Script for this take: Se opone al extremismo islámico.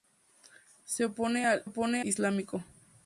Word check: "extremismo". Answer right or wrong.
wrong